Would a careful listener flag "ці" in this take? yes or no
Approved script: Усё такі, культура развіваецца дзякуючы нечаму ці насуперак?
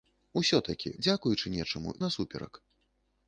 yes